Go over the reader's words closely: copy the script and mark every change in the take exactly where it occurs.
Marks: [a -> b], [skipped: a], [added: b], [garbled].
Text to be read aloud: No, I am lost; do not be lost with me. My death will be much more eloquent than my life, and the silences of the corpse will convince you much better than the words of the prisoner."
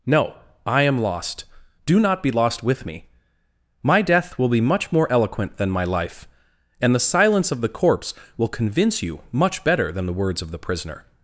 No, I am lost; do not be lost with me. My death will be much more eloquent than my life, and the [silences -> silence] of the corpse will convince you much better than the words of the prisoner."